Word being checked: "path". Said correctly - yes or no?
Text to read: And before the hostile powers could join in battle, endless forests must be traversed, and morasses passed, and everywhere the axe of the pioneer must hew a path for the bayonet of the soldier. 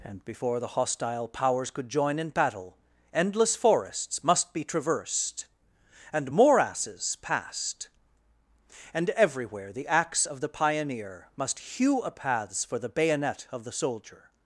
no